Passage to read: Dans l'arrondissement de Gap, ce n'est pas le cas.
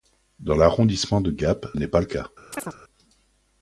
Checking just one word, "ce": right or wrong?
wrong